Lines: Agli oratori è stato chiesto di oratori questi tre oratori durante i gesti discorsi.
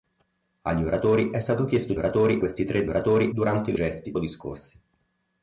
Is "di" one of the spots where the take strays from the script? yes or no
no